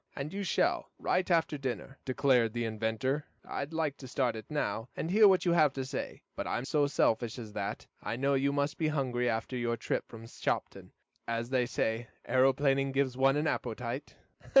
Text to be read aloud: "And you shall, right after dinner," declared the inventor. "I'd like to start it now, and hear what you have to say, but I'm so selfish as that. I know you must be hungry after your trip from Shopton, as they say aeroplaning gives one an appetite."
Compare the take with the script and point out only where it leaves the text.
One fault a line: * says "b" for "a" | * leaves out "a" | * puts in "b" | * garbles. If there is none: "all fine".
all fine